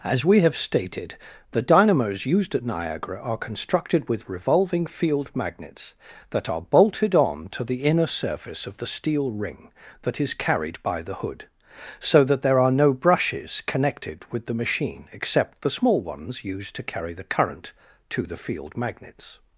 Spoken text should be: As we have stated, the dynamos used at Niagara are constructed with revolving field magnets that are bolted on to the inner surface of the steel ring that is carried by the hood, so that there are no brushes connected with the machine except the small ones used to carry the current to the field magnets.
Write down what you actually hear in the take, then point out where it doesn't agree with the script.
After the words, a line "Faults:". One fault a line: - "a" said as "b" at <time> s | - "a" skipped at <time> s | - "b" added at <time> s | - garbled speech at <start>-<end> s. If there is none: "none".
As we have stated, the dynamos used at Niagara are constructed with revolving field magnets that are bolted on to the inner surface of the steel ring that is carried by the hood, so that there are no brushes connected with the machine except the small ones used to carry the current to the field magnets.
Faults:
none